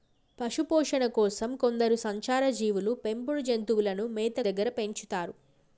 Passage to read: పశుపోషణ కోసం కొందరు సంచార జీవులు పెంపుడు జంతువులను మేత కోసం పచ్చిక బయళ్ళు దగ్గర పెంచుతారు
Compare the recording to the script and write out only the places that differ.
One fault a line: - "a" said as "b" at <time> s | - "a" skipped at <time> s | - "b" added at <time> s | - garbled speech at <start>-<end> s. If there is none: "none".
- "కోసం పచ్చిక బయళ్ళు" skipped at 4.4 s